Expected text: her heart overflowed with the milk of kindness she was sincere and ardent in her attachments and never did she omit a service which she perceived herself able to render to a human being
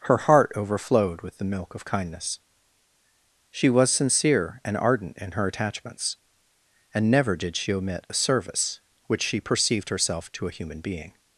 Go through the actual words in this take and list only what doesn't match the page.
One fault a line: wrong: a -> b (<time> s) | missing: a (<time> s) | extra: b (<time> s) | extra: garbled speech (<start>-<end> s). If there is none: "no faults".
missing: able to render (10.3 s)